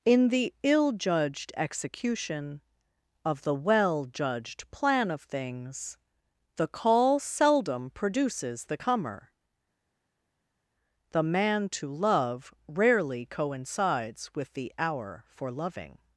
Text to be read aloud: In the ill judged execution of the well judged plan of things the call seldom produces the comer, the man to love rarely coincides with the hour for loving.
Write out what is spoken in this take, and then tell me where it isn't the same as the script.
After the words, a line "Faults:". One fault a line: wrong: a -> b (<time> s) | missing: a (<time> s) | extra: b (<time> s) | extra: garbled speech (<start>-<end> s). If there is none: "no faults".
In the ill judged execution of the well judged plan of things the call seldom produces the comer, the man to love rarely coincides with the hour for loving.
Faults:
no faults